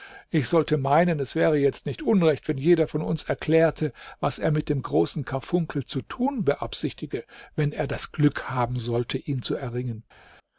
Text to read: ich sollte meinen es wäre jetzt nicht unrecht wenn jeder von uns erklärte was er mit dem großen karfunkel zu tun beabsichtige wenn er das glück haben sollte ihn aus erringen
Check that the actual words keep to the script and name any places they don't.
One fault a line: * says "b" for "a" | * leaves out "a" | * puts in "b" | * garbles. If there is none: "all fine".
* says "zu" for "aus"